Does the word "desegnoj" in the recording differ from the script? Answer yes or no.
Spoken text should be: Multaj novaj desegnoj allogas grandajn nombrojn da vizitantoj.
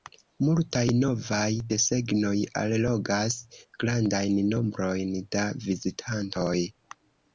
no